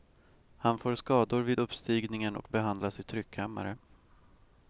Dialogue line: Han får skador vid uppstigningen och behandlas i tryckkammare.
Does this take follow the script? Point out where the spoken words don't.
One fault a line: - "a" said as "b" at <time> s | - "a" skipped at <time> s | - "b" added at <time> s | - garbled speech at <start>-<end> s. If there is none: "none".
none